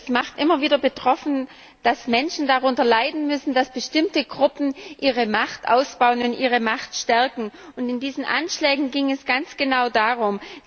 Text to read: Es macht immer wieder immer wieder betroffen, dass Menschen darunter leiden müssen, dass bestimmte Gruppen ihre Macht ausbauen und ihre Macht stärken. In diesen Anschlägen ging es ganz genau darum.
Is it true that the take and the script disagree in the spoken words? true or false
true